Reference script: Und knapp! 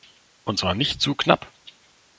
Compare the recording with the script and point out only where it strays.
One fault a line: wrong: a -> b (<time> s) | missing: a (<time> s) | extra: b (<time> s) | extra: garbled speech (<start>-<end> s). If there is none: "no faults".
extra: zwar nicht zu (0.6 s)